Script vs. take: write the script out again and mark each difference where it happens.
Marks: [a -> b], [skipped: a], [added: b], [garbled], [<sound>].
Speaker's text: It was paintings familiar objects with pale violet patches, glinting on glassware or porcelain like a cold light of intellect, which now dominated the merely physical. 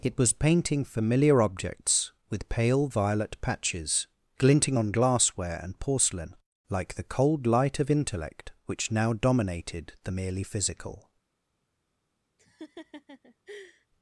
It was [paintings -> painting] familiar objects with pale violet patches, glinting on glassware [or -> and] porcelain like [a -> the] cold light of intellect, which now dominated the merely physical. [laugh]